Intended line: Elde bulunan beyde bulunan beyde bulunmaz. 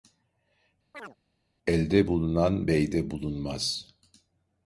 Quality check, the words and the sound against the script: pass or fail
fail